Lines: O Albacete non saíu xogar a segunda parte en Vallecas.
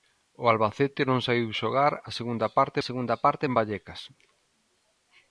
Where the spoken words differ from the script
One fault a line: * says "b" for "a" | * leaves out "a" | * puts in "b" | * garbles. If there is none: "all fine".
* puts in "segunda parte"